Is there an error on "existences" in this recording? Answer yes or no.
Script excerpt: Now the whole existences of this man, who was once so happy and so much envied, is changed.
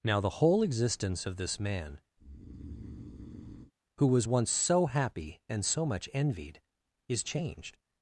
yes